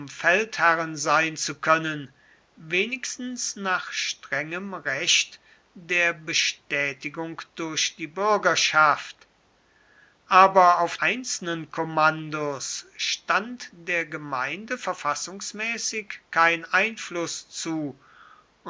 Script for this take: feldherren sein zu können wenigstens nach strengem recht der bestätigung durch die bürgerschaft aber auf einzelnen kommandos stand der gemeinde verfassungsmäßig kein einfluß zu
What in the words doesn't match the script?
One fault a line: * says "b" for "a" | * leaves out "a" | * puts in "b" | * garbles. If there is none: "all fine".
all fine